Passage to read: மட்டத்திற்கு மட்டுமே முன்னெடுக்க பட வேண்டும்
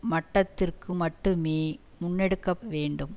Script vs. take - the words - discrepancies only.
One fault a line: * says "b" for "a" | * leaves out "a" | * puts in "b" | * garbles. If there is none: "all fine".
* leaves out "பட"